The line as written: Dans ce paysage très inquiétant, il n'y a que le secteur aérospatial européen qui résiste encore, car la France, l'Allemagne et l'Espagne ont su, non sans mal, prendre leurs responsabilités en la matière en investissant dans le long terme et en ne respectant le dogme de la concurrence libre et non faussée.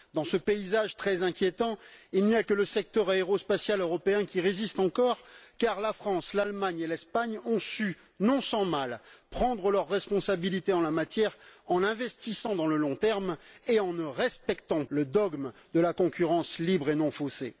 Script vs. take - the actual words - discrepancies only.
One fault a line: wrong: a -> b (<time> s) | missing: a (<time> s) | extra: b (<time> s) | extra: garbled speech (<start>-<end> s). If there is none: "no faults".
no faults